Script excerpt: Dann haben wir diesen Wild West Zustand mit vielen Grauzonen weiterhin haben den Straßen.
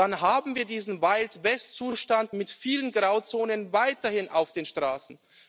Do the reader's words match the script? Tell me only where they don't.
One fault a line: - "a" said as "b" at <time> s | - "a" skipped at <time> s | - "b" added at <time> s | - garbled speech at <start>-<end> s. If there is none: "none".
- "haben" said as "auf" at 4.3 s